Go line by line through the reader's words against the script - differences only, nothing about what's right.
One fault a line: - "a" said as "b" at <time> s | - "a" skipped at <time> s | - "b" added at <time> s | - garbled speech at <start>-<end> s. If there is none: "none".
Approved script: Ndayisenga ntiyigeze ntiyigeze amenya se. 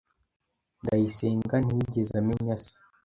- "ntiyigeze" skipped at 2.1 s